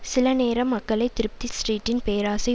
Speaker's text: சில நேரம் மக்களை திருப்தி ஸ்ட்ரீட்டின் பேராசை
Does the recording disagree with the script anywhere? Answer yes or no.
no